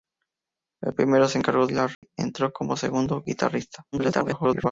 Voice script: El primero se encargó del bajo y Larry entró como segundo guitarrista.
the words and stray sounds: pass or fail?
fail